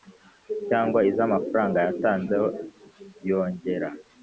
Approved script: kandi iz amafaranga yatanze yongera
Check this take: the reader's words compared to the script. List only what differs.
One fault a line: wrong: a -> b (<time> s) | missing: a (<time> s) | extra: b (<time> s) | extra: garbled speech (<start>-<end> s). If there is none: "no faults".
wrong: kandi -> cyangwa (0.7 s)